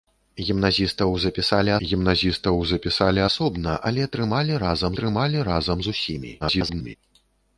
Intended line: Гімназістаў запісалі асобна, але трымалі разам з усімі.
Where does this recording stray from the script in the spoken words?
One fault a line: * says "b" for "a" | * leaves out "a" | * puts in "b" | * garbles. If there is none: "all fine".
* puts in "гімназістаў запісалі"
* puts in "трымалі разам"
* garbles